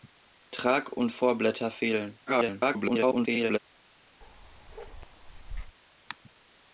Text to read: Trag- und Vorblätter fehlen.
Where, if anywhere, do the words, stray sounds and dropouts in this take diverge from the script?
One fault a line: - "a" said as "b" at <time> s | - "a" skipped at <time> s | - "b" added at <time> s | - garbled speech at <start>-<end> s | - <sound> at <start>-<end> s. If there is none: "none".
- garbled speech at 2.3-3.6 s
- bark at 4.2-5.8 s